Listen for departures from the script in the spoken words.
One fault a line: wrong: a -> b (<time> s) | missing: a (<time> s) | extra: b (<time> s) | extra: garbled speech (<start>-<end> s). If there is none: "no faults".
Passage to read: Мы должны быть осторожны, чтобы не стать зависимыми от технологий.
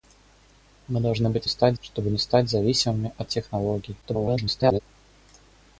wrong: осторожны -> стать (1.5 s)
extra: garbled speech (4.0-4.8 s)